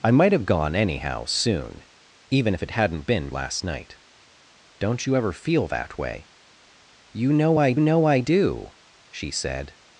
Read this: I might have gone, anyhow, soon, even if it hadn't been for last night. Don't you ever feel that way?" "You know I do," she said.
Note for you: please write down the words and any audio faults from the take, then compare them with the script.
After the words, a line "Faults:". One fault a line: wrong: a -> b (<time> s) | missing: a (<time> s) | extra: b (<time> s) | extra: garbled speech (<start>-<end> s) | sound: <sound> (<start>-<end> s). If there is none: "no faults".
I might have gone, anyhow, soon, even if it hadn't been last night. Don't you ever feel that way?" "You know I know I do," she said.
Faults:
missing: for (3.3 s)
extra: know I (7.8 s)